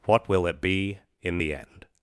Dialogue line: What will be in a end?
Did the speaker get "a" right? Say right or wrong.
wrong